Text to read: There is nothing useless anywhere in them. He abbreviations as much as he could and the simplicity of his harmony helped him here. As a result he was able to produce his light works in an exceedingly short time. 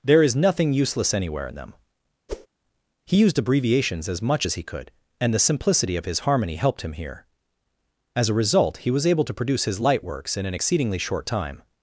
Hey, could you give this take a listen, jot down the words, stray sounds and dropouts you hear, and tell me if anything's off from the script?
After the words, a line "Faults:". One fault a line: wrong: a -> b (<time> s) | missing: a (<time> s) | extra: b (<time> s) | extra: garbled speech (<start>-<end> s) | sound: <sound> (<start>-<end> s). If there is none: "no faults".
There is nothing useless anywhere in them. He used abbreviations as much as he could and the simplicity of his harmony helped him here. As a result he was able to produce his light works in an exceedingly short time.
Faults:
sound: whoosh (2.3-2.5 s)
extra: used (3.2 s)